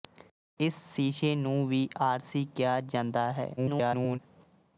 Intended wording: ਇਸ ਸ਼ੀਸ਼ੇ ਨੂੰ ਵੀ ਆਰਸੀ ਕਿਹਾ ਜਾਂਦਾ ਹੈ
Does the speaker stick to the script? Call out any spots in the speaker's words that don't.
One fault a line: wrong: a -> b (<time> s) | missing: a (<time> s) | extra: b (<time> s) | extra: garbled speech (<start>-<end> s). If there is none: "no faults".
extra: garbled speech (3.6-4.2 s)